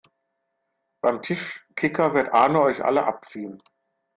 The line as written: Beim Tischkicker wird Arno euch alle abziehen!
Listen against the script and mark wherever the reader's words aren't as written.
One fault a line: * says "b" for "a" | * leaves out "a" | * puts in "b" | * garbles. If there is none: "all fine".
all fine